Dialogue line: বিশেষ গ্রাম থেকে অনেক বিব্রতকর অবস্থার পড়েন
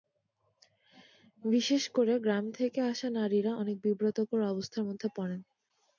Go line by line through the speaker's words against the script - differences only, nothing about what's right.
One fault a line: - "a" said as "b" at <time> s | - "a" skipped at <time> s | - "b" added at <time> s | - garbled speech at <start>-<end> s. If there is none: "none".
- "করে" added at 1.9 s
- "আসা নারীরা" added at 2.9 s
- "মধ্যে" added at 4.8 s